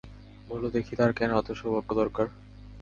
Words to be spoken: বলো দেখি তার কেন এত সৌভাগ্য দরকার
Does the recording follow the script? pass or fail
pass